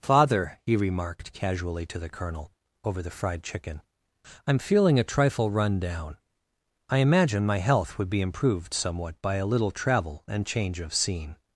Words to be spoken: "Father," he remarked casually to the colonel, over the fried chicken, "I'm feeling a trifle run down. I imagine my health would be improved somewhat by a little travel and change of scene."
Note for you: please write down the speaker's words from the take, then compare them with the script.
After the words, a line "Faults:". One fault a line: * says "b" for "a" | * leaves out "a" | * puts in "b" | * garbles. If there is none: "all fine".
"Father," he remarked casually to the colonel, over the fried chicken, "I'm feeling a trifle run down. I imagine my health would be improved somewhat by a little travel and change of scene."
Faults:
all fine